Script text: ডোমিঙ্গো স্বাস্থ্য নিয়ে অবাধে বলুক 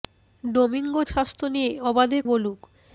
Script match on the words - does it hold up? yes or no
yes